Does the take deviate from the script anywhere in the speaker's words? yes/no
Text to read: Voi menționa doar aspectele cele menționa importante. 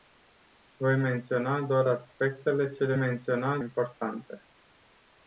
no